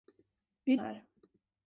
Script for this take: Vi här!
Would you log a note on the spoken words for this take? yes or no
no